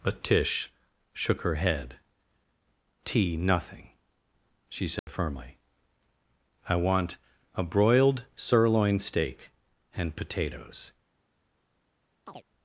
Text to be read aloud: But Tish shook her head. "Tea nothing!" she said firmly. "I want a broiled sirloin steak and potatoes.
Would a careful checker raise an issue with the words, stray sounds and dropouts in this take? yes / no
yes